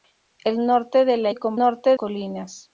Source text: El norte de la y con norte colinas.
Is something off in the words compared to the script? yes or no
no